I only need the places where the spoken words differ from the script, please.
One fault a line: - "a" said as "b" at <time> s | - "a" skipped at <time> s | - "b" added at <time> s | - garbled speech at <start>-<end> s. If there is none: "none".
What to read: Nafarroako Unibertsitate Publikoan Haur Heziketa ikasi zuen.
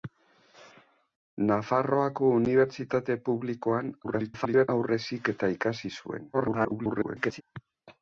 - garbled speech at 4.0-4.7 s
- garbled speech at 6.3-7.4 s